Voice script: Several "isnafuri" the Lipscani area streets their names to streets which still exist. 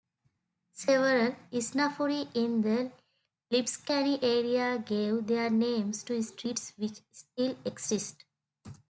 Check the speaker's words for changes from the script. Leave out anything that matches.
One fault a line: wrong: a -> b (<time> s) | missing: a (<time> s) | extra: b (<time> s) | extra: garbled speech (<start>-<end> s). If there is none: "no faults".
extra: in (2.4 s)
wrong: streets -> gave (4.8 s)